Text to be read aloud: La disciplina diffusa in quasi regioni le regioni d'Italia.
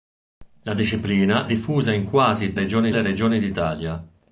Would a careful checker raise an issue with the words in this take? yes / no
no